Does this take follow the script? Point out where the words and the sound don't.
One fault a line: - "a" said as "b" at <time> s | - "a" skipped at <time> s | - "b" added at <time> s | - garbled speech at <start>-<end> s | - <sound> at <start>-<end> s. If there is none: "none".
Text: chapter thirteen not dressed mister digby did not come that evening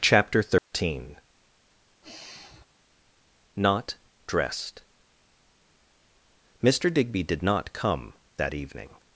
- dropout at 0.6-0.7 s
- sigh at 2.0-2.7 s